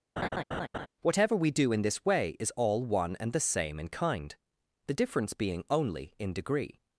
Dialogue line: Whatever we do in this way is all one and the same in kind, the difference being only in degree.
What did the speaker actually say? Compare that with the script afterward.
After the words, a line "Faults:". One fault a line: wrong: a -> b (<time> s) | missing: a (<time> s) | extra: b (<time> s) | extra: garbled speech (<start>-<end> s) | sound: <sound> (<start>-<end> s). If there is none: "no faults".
Whatever we do in this way is all one and the same in kind, the difference being only in degree.
Faults:
sound: laugh (0.2-0.9 s)